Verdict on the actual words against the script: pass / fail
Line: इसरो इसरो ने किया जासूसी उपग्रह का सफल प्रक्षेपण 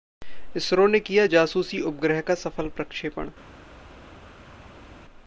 fail